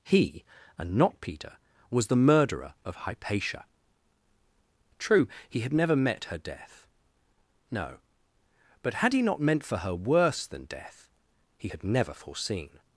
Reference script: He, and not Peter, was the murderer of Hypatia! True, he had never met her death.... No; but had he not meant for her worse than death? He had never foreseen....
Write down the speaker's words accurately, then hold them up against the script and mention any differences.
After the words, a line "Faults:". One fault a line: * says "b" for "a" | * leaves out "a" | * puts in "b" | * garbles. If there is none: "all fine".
He, and not Peter, was the murderer of Hypatia! True, he had never met her death.... No; but had he not meant for her worse than death? He had never foreseen....
Faults:
all fine